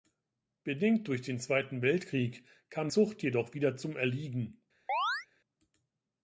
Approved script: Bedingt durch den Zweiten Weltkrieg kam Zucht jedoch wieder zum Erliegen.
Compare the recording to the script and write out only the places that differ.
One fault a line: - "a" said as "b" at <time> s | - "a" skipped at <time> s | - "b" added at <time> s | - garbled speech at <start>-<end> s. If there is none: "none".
none